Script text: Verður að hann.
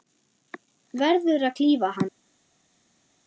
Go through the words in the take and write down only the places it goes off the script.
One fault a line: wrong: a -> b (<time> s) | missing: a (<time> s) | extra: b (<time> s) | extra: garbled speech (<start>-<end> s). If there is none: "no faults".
extra: klífa (1.6 s)